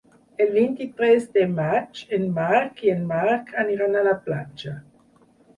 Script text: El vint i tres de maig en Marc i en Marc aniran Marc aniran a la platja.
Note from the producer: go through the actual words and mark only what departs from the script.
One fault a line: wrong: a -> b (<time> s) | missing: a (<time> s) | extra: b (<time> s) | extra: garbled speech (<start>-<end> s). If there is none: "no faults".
missing: Marc aniran (4.0 s)